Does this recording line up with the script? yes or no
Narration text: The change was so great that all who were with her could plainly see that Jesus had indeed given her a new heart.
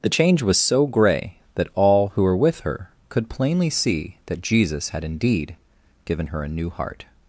no